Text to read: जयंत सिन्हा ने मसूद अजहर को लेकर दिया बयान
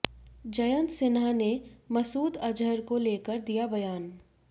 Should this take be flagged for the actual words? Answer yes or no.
no